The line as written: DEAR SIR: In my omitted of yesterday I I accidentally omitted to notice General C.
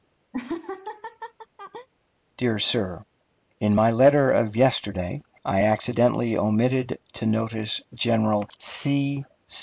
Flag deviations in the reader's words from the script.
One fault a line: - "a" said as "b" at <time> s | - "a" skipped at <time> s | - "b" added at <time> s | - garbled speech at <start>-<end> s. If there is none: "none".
- "omitted" said as "letter" at 3.9 s
- "I" skipped at 5.6 s